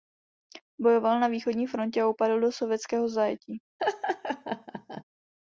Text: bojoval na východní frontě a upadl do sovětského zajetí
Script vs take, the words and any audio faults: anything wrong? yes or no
yes